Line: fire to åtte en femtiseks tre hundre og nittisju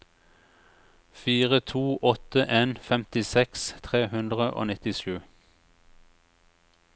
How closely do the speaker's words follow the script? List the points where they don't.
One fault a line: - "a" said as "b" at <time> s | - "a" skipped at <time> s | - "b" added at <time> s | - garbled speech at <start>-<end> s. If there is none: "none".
none